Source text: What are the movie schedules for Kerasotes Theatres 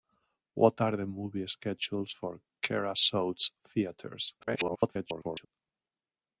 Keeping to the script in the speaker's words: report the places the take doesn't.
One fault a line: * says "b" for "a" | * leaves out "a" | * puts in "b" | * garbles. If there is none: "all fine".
* garbles